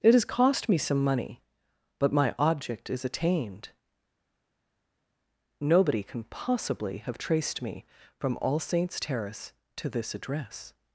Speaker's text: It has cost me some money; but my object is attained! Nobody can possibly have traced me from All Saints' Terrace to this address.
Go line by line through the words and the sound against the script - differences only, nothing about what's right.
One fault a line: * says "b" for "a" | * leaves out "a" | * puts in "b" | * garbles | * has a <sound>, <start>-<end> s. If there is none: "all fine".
all fine